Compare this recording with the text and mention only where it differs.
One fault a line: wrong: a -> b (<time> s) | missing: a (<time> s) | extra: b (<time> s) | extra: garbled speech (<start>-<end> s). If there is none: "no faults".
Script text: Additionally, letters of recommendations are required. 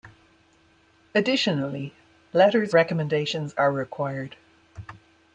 missing: of (2.7 s)